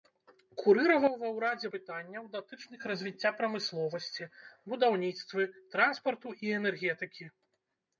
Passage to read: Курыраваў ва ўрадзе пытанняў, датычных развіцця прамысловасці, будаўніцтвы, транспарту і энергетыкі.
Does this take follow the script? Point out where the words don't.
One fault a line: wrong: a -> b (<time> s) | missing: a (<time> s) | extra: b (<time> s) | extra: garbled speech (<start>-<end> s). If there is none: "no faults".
no faults